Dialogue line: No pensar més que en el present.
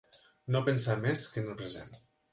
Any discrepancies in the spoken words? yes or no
no